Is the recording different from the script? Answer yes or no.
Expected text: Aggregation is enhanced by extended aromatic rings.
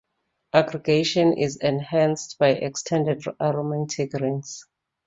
no